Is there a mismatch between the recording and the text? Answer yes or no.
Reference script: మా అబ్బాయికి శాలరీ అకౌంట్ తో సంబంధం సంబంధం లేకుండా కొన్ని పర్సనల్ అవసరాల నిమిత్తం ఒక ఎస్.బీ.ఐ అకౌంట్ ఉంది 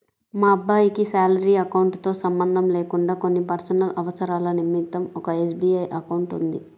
yes